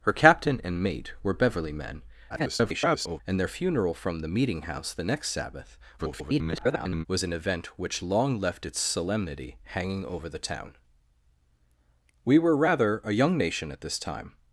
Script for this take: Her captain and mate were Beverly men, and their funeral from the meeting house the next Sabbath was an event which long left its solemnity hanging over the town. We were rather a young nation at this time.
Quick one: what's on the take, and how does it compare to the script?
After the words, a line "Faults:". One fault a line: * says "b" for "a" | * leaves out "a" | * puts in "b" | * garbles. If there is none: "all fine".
Her captain and mate were Beverly men, [garbled] and their funeral from the meeting house the next Sabbath [garbled] was an event which long left its solemnity hanging over the town. We were rather a young nation at this time.
Faults:
* garbles
* garbles